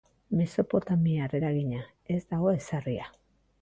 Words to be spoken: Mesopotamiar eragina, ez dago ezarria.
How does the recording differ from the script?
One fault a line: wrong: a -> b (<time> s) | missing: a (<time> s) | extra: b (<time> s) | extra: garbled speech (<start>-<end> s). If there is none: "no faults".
no faults